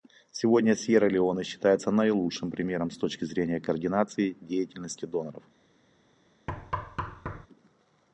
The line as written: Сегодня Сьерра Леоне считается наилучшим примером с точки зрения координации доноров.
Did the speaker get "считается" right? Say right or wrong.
right